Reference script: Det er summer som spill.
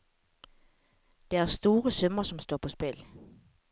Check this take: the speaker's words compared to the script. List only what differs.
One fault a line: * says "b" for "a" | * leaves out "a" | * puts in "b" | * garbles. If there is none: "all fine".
* puts in "store"
* puts in "står på"